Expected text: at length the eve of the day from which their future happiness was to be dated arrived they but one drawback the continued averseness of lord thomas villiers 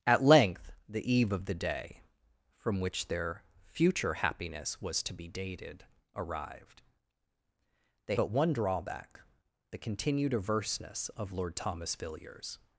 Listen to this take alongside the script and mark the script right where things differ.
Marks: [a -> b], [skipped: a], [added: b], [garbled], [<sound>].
at length the eve of the day from which their future happiness was to be dated arrived they but one drawback the continued averseness of lord thomas villiers